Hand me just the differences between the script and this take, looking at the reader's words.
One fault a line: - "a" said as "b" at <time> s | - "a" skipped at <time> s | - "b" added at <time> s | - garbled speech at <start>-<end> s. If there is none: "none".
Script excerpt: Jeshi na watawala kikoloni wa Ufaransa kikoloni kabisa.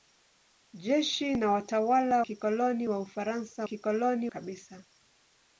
none